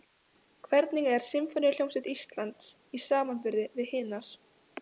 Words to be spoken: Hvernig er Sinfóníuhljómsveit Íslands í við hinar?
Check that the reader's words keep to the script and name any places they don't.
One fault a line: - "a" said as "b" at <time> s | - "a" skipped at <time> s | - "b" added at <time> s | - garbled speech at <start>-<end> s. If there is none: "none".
- "samanburði" added at 3.1 s